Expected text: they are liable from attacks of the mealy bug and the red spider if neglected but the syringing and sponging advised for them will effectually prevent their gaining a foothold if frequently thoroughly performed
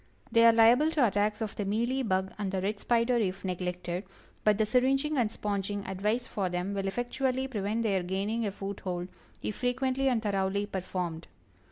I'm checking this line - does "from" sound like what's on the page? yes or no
no